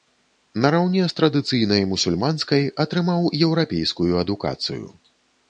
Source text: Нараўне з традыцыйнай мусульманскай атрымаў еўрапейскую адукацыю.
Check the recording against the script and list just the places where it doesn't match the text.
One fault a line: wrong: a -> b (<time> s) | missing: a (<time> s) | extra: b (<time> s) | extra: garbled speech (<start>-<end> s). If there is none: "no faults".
no faults